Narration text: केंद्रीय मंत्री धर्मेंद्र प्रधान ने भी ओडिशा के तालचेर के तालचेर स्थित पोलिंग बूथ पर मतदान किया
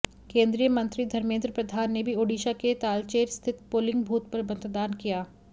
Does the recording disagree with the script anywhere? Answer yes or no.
yes